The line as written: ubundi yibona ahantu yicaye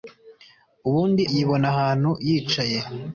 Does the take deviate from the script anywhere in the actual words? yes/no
no